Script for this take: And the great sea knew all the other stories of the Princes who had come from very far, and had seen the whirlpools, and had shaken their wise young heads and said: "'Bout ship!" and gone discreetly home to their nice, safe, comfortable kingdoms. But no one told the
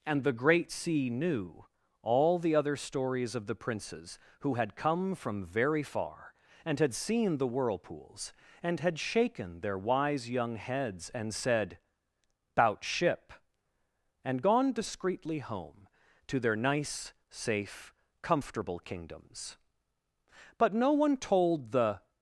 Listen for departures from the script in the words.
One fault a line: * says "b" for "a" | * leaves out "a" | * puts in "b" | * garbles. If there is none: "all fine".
all fine